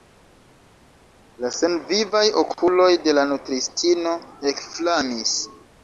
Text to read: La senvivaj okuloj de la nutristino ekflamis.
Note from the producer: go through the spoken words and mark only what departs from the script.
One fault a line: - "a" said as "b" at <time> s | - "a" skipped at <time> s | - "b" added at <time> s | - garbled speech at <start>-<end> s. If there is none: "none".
none